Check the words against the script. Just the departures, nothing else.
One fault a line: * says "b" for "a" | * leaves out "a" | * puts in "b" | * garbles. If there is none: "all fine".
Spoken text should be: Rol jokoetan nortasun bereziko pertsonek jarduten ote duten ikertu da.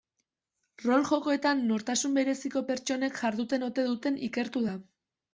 all fine